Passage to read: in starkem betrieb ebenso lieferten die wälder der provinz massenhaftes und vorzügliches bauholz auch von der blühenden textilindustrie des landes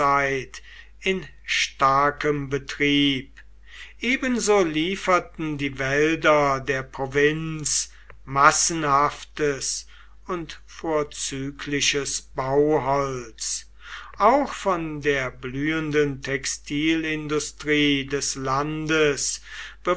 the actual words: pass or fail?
pass